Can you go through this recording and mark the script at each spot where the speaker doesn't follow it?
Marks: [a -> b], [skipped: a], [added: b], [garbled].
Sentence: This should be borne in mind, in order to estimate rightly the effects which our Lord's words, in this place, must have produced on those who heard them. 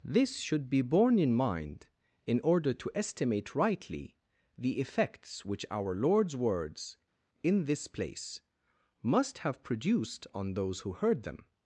This should be borne in mind, in order to estimate rightly the effects which our Lord's words, in this place, must have produced on those who heard them.